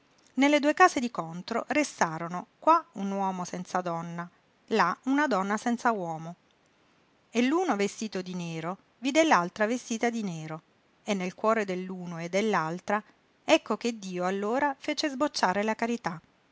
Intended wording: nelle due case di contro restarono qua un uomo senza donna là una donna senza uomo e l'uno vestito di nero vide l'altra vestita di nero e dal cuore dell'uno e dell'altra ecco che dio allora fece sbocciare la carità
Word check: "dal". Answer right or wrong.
wrong